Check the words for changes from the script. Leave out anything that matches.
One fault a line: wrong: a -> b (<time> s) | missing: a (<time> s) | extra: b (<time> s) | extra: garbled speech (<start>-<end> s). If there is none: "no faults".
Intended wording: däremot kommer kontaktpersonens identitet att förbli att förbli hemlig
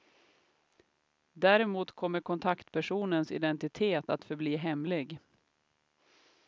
missing: att förbli (4.6 s)